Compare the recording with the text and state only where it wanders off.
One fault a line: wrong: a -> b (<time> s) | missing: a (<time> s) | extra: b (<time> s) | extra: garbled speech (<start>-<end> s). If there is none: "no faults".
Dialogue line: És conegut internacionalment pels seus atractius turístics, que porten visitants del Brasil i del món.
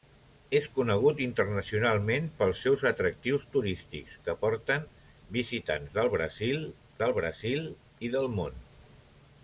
extra: del Brasil (7.0 s)